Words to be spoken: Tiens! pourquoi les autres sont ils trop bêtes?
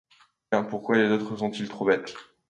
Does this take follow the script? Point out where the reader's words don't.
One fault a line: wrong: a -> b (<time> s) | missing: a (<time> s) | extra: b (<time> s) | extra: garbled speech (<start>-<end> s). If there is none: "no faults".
no faults